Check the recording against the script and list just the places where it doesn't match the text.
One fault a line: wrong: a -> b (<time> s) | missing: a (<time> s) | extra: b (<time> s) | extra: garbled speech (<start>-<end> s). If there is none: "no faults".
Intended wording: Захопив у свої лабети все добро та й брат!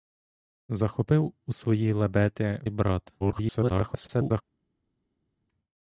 missing: все добро та (2.6 s)
extra: garbled speech (3.2-4.4 s)